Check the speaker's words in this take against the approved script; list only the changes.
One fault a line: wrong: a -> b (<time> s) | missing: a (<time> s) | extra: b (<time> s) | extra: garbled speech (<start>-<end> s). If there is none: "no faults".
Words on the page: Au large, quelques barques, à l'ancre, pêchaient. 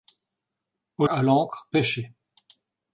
missing: large quelques barques (1.1 s)